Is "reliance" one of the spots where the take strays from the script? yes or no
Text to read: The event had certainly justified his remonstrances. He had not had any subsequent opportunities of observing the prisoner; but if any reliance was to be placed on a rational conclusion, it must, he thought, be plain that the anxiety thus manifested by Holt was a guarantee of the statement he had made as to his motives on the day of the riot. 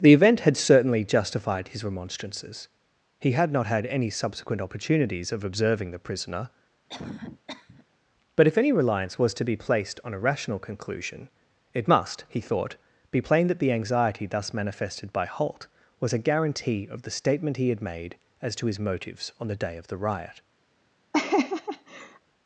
no